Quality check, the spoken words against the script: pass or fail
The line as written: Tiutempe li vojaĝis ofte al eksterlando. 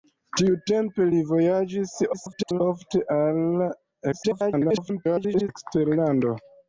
fail